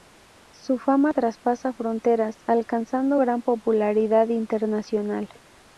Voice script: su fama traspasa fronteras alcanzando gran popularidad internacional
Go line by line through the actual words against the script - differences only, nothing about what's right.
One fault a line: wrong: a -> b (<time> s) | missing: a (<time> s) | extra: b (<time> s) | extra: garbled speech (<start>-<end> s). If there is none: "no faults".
no faults